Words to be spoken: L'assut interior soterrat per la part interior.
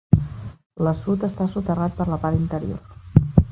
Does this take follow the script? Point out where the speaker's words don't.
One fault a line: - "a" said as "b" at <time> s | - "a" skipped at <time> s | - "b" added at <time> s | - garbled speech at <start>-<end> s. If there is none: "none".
- "interior" said as "està" at 1.3 s